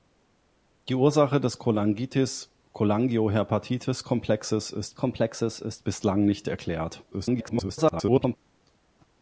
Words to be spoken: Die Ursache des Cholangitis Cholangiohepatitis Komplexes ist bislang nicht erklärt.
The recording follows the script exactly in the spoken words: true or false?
false